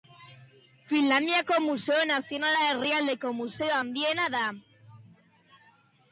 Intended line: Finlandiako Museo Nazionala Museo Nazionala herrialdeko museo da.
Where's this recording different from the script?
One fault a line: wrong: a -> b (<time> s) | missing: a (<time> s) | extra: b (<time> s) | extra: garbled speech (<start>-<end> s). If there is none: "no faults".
missing: Museo Nazionala (2.6 s)
extra: handiena (3.8 s)